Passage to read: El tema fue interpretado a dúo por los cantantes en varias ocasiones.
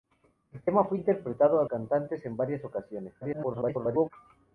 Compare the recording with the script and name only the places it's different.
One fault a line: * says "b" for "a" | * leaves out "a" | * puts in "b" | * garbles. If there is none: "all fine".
* leaves out "dúo por los"
* garbles